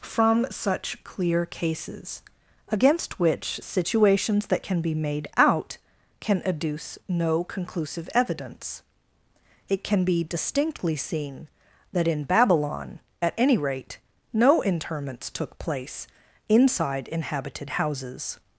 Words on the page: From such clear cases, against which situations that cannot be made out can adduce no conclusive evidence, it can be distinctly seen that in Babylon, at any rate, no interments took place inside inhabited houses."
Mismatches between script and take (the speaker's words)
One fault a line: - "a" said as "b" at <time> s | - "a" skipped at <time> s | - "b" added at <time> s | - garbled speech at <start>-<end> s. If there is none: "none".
- "cannot" said as "can" at 4.6 s